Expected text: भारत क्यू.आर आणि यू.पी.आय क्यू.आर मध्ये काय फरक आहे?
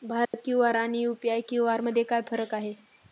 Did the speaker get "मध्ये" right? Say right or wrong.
right